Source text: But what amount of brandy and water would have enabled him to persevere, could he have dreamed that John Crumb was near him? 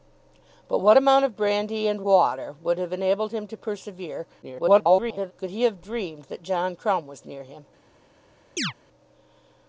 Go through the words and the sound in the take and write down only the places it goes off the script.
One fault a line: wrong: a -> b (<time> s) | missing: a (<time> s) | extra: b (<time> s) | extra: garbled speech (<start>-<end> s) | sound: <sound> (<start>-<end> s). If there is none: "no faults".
extra: garbled speech (4.4-5.3 s)
sound: chirp (8.6-8.7 s)